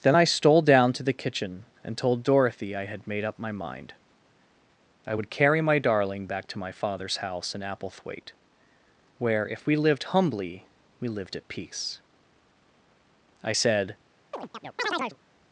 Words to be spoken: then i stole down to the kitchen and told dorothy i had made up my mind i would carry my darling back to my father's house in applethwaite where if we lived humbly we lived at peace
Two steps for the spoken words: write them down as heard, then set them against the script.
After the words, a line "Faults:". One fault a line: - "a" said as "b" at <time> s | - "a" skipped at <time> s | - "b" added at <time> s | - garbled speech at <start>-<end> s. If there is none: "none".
then i stole down to the kitchen and told dorothy i had made up my mind i would carry my darling back to my father's house in applethwaite where if we lived humbly we lived at peace i said
Faults:
- "i said" added at 13.4 s